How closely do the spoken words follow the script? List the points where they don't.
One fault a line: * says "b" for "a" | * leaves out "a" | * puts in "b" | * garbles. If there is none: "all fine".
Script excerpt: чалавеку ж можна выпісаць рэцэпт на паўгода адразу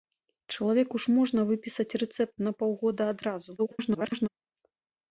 * garbles